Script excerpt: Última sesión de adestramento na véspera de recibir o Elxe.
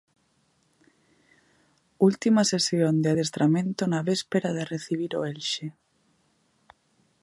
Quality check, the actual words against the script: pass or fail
pass